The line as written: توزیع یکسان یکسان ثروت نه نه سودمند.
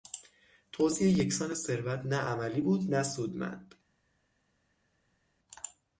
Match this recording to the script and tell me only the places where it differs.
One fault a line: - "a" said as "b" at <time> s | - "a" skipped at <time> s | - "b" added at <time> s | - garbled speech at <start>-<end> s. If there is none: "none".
- "یکسان" skipped at 1.5 s
- "عملی بود" added at 2.1 s